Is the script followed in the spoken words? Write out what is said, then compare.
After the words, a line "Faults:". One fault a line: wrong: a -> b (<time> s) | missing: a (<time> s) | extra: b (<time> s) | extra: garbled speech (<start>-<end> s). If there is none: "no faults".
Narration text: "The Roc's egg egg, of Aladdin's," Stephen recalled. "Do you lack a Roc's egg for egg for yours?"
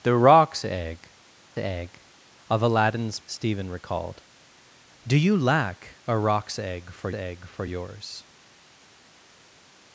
"The Roc's egg egg, of Aladdin's," Stephen recalled. "Do you lack a Roc's egg for egg for yours?"
Faults:
no faults